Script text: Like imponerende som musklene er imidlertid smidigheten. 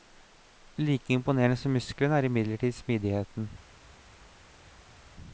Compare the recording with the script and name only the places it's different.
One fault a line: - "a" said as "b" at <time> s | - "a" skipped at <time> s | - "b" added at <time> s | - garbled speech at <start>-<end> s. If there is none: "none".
none